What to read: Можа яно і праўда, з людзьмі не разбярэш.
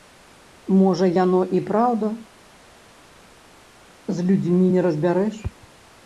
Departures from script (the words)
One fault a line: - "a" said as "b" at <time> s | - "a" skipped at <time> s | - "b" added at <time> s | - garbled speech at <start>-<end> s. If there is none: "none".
none